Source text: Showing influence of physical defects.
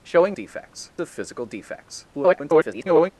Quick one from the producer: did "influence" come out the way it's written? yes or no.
no